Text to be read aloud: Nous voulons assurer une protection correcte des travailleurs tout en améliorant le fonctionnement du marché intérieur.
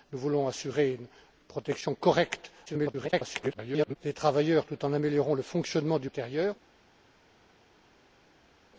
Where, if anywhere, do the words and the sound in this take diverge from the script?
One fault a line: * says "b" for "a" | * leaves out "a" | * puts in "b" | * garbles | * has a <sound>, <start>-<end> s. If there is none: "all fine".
* garbles
* leaves out "marché"